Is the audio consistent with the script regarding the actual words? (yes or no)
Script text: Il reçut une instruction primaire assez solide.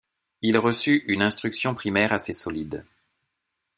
yes